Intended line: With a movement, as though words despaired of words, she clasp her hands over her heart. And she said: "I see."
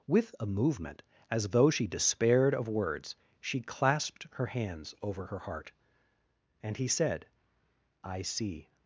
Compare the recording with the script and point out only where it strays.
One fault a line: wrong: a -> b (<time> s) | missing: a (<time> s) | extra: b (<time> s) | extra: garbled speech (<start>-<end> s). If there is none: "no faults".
wrong: words -> she (1.7 s)
wrong: clasp -> clasped (3.6 s)
wrong: she -> he (6.8 s)